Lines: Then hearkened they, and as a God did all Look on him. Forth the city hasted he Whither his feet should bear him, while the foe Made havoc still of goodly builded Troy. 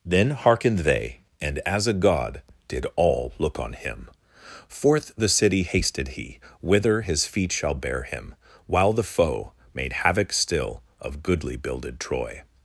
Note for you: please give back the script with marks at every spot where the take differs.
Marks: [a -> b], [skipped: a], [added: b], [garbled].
Then hearkened they, and as a God did all Look on him. Forth the city hasted he Whither his feet [should -> shall] bear him, while the foe Made havoc still of goodly builded Troy.